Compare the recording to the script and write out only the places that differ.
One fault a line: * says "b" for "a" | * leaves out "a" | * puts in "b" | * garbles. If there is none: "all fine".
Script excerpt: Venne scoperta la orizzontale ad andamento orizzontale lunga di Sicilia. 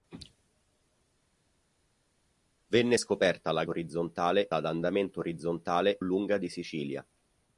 all fine